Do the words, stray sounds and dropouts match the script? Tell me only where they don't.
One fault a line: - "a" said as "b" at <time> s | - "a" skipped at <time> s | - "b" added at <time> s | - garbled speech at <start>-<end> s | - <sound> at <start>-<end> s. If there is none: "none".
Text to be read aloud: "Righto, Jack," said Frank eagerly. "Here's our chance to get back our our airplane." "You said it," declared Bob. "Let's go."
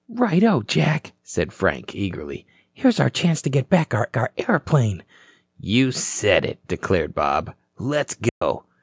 - dropout at 8.3-8.4 s